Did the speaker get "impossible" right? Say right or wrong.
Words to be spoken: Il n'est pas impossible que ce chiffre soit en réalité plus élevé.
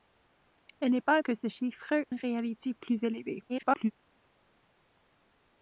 wrong